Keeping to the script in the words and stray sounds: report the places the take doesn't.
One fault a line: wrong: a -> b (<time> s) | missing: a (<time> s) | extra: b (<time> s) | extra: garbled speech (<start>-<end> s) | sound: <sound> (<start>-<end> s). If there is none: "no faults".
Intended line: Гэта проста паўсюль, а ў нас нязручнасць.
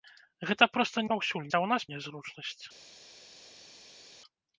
no faults